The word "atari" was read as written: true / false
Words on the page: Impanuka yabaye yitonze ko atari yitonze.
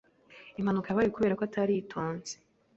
true